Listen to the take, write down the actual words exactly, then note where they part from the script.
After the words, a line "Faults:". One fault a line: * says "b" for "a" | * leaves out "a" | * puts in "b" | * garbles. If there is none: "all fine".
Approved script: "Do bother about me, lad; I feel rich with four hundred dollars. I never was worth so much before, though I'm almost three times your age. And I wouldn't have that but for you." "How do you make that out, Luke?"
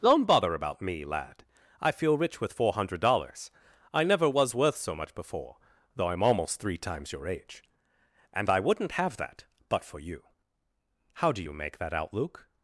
"Don't bother about me, lad; I feel rich with four hundred dollars. I never was worth so much before, though I'm almost three times your age. And I wouldn't have that but for you." "How do you make that out, Luke?"
Faults:
* says "Don't" for "Do"